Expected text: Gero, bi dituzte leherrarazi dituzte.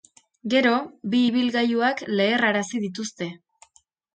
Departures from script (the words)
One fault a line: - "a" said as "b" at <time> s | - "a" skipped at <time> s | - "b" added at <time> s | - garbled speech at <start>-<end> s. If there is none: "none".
- "dituzte" said as "ibilgailuak" at 1.3 s